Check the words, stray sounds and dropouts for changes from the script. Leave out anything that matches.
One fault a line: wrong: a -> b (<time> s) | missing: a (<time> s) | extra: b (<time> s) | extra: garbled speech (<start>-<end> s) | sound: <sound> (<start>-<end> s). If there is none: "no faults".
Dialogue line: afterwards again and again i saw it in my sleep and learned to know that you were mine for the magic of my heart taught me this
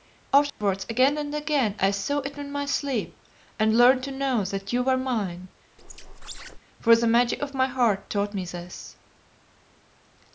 sound: dropout (0.5-0.6 s)
sound: squeak (5.8-6.6 s)